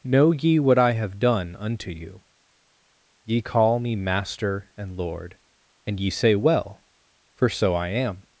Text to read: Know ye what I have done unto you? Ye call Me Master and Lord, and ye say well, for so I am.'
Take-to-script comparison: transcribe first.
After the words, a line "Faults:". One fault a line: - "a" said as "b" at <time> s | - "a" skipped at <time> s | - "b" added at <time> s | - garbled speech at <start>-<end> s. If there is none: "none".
Know ye what I have done unto you? Ye call Me Master and Lord, and ye say well, for so I am.'
Faults:
none